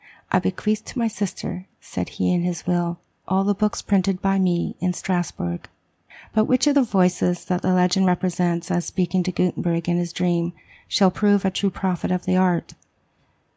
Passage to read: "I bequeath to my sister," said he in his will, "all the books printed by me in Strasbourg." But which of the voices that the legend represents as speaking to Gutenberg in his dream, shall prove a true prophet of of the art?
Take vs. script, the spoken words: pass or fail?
fail